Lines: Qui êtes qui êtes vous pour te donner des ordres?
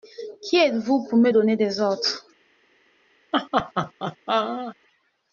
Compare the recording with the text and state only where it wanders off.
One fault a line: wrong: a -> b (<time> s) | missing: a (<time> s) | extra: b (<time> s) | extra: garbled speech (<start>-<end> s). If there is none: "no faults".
missing: qui êtes (0.8 s)
wrong: te -> me (1.2 s)